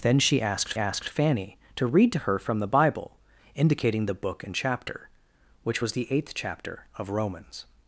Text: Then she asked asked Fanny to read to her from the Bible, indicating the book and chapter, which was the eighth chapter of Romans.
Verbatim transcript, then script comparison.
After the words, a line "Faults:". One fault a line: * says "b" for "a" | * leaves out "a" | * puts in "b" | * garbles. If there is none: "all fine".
Then she asked asked Fanny to read to her from the Bible, indicating the book and chapter, which was the eighth chapter of Romans.
Faults:
all fine